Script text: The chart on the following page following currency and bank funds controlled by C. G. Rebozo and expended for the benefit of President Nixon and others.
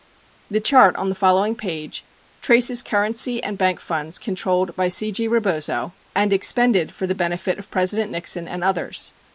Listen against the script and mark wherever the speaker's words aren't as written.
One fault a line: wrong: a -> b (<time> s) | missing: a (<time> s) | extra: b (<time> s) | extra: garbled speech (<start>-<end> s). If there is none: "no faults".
wrong: following -> traces (2.4 s)